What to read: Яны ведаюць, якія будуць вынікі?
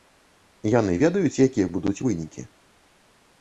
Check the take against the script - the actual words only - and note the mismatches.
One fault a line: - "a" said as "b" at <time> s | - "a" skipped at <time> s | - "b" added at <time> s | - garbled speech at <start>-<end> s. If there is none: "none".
none